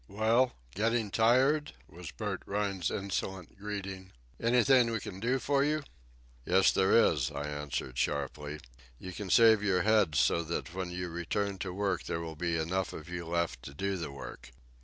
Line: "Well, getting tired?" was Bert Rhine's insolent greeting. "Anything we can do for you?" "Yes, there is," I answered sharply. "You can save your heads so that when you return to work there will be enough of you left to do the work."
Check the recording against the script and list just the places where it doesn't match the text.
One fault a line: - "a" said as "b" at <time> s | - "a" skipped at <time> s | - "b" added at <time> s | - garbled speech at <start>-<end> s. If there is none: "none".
none